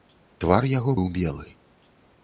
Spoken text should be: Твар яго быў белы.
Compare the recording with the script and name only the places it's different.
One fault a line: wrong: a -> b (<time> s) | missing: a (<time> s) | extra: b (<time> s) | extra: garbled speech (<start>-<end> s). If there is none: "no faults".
no faults